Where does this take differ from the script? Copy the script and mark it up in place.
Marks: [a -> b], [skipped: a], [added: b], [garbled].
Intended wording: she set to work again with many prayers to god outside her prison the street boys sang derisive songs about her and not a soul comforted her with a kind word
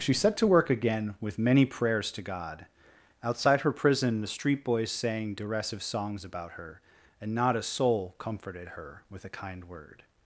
she set to work again with many prayers to god outside her prison the street boys sang derisive songs about her and not a soul comforted her with a kind word